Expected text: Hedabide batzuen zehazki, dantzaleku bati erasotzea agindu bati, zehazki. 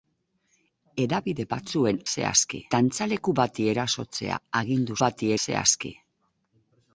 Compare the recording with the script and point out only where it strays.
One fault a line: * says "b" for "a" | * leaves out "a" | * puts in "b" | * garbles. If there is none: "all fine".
all fine